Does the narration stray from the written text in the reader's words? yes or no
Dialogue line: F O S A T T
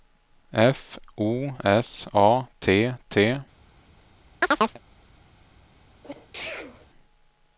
no